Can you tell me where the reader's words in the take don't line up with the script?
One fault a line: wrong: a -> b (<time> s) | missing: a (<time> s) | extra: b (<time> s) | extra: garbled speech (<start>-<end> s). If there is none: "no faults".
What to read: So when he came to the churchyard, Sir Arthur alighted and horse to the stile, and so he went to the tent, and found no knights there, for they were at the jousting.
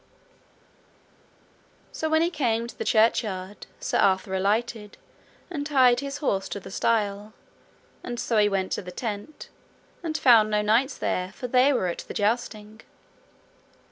extra: tied his (5.7 s)